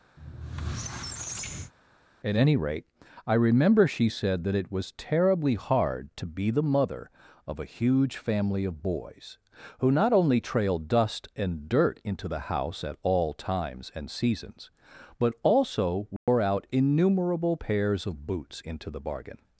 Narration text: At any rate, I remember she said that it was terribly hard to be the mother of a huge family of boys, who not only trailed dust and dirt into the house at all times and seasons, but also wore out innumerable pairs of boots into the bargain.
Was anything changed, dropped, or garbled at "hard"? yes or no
no